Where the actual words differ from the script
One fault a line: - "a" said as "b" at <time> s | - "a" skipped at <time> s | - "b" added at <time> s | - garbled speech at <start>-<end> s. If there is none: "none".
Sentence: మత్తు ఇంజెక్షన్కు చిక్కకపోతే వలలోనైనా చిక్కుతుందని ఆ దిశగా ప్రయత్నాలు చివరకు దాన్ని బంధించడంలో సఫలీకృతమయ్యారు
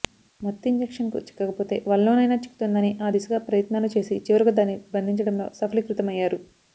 - "చేసి" added at 4.0 s